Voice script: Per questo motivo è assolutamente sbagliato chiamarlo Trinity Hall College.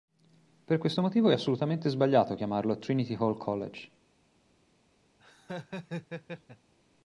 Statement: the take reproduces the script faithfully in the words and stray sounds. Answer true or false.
false